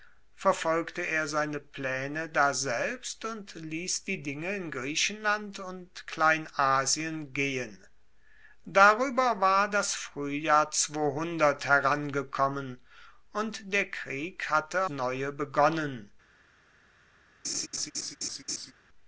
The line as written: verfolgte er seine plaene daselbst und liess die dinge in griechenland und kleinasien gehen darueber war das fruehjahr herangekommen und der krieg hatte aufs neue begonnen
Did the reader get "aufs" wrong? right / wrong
wrong